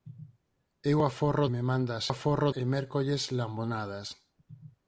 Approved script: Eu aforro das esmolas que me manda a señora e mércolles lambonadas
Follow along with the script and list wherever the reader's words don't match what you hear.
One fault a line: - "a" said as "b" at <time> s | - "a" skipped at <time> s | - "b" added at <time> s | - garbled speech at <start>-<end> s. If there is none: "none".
- "das esmolas que" skipped at 1.4 s
- "señora" said as "aforro" at 2.1 s